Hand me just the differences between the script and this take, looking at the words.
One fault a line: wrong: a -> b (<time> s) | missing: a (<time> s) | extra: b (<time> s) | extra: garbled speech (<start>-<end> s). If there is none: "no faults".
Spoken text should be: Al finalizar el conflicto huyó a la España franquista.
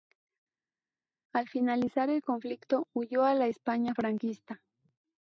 no faults